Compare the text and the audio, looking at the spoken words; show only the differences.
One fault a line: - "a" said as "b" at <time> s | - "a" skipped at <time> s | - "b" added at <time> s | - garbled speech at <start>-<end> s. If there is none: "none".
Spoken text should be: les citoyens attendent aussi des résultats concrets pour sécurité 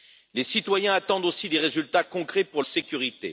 none